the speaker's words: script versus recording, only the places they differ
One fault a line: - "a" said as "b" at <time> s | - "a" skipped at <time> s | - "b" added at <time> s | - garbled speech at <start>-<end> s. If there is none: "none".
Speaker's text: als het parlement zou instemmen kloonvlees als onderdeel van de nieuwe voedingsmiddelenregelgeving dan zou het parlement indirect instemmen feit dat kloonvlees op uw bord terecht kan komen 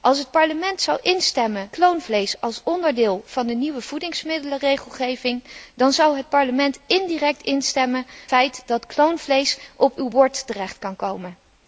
none